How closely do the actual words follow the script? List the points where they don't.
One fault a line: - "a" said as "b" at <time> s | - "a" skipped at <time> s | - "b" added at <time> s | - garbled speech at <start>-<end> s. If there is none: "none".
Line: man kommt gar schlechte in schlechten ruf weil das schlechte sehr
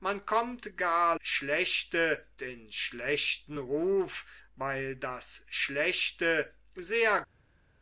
none